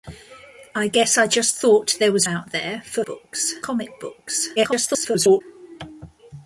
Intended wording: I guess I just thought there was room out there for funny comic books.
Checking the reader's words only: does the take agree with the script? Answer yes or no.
no